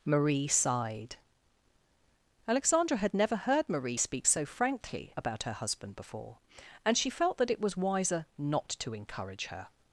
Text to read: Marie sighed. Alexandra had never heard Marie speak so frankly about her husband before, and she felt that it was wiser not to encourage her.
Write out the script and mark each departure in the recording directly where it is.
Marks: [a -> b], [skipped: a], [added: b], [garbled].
Marie sighed. Alexandra had never heard Marie speak so frankly about her husband before, and she felt that it was wiser not to encourage her.